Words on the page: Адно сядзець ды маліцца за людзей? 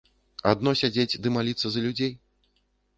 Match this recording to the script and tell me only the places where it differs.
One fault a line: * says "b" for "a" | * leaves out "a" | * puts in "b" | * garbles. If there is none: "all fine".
all fine